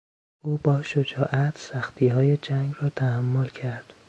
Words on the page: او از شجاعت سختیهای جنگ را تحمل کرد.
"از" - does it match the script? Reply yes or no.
no